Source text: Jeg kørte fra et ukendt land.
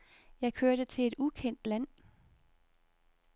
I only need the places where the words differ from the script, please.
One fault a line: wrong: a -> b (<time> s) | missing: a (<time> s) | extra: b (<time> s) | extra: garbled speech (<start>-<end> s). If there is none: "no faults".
wrong: fra -> til (0.8 s)